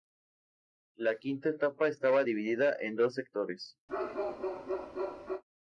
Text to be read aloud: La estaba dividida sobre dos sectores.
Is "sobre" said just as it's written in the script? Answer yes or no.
no